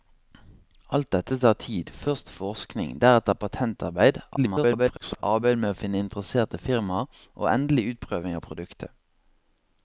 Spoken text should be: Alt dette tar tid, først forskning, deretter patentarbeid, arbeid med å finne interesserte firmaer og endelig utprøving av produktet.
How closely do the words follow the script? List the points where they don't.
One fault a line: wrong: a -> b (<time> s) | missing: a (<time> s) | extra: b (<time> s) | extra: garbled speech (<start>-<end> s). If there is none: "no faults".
extra: garbled speech (4.4-5.2 s)